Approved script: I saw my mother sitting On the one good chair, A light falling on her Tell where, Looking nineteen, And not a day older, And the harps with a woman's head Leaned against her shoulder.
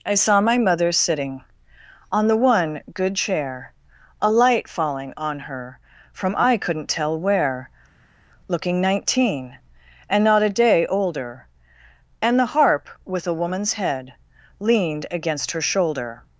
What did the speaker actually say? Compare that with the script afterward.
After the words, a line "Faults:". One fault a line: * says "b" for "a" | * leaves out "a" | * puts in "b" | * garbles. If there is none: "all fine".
I saw my mother sitting On the one good chair, A light falling on her From I couldn't tell where, Looking nineteen, And not a day older, And the harp with a woman's head Leaned against her shoulder.
Faults:
* puts in "From I couldn't"
* says "harp" for "harps"